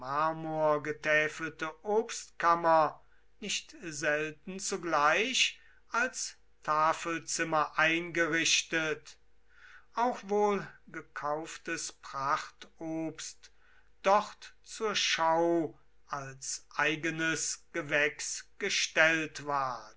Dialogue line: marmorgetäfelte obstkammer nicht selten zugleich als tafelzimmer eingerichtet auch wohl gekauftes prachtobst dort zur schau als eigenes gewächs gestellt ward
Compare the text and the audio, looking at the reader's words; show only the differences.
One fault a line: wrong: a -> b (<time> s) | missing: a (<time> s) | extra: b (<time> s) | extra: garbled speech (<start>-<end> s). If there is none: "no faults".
no faults